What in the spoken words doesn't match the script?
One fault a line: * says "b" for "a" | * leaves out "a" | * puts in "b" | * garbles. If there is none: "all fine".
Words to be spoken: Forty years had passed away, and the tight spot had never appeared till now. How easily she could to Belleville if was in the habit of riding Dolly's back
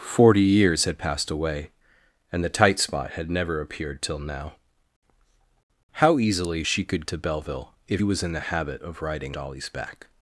all fine